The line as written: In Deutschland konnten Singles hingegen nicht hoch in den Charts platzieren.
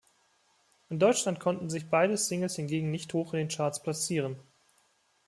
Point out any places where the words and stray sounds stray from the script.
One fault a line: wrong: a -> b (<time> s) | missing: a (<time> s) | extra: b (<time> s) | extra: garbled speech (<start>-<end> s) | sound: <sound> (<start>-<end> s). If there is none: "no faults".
extra: sich beide (1.7 s)